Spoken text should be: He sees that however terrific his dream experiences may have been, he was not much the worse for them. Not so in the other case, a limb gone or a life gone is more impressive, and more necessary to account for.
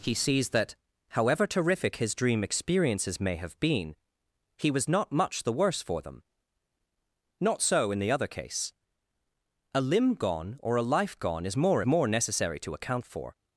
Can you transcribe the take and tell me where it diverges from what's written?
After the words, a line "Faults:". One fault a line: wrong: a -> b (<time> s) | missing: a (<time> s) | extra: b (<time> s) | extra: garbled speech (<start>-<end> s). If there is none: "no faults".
He sees that however terrific his dream experiences may have been, he was not much the worse for them. Not so in the other case, a limb gone or a life gone is more more necessary to account for.
Faults:
missing: impressive and (11.8 s)